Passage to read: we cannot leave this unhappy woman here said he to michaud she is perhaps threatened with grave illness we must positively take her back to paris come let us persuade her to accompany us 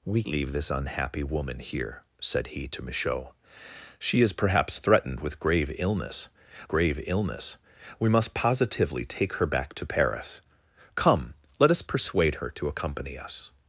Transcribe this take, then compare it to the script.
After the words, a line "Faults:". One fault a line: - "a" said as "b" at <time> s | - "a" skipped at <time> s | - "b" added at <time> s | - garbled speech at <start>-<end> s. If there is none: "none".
we leave this unhappy woman here said he to michaud she is perhaps threatened with grave illness grave illness we must positively take her back to paris come let us persuade her to accompany us
Faults:
- "cannot" skipped at 0.2 s
- "grave illness" added at 6.7 s